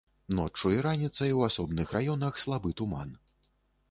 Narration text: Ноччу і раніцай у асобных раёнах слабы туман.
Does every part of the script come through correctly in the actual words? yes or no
yes